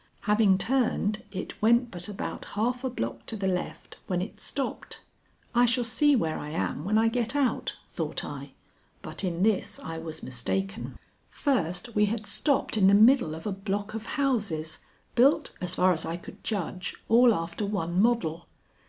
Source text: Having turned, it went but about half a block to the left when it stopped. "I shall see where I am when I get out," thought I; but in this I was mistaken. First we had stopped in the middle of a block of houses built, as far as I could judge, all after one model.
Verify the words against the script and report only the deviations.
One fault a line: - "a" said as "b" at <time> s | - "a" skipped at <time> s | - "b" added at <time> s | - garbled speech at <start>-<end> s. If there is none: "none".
none